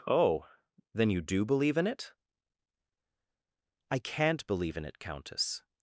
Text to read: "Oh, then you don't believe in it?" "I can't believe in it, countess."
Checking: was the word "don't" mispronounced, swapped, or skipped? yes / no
yes